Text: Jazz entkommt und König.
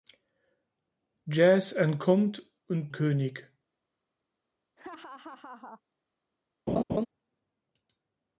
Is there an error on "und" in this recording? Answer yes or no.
no